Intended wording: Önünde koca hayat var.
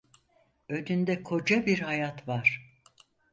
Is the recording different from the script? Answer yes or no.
yes